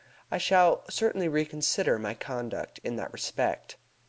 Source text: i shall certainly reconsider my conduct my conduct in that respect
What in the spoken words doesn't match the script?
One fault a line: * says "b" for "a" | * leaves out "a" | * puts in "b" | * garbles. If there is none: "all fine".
* leaves out "my conduct"